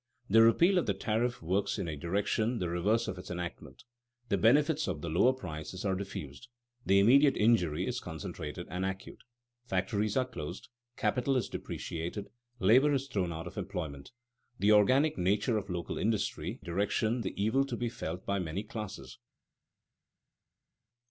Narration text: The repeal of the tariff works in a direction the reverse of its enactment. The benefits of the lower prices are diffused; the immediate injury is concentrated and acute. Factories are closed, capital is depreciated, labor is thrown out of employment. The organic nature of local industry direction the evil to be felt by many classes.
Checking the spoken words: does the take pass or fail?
pass